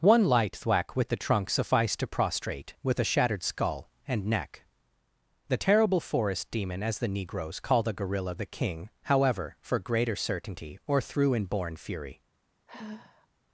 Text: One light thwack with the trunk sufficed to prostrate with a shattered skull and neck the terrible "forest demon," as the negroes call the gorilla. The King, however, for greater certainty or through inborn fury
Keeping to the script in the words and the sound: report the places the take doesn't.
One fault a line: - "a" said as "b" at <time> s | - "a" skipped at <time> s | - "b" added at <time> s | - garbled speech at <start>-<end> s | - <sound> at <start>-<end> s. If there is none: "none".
- sigh at 12.7-13.3 s